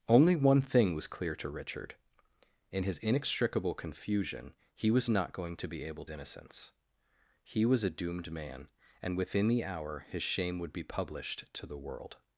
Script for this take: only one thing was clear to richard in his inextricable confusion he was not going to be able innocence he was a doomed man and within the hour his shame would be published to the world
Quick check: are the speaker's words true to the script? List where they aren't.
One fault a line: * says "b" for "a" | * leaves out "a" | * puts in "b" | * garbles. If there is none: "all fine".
all fine